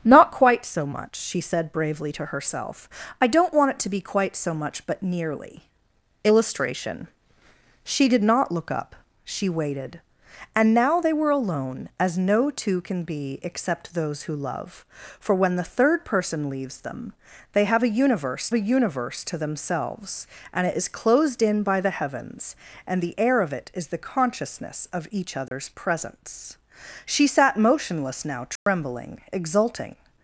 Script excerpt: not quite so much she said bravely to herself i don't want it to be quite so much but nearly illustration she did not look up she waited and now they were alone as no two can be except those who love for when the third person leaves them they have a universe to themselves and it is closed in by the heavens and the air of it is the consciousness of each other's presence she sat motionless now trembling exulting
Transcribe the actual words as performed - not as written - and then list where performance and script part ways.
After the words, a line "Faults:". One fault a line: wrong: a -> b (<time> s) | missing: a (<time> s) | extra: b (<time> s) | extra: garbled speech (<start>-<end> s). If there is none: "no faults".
not quite so much she said bravely to herself i don't want it to be quite so much but nearly illustration she did not look up she waited and now they were alone as no two can be except those who love for when the third person leaves them they have a universe a universe to themselves and it is closed in by the heavens and the air of it is the consciousness of each other's presence she sat motionless now trembling exulting
Faults:
extra: a universe (18.5 s)